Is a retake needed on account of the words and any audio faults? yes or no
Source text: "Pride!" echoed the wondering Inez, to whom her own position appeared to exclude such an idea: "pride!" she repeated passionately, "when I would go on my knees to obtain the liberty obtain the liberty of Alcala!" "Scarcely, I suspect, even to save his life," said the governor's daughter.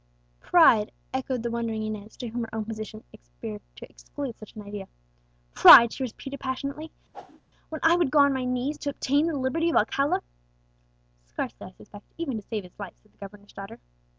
yes